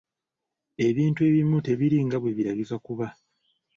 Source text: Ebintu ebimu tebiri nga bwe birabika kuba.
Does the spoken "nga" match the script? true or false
true